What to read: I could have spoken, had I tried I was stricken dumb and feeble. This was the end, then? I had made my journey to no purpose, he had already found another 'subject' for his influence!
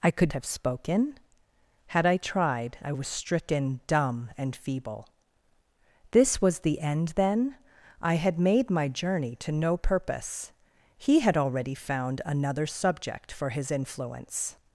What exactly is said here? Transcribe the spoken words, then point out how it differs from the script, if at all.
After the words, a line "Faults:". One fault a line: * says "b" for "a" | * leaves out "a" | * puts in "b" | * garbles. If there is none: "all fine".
I could have spoken, had I tried I was stricken dumb and feeble. This was the end, then? I had made my journey to no purpose, he had already found another 'subject' for his influence!
Faults:
all fine